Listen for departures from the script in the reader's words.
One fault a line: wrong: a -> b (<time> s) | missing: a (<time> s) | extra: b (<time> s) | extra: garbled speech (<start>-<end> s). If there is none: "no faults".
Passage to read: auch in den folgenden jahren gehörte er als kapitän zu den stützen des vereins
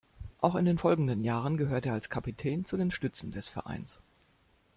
no faults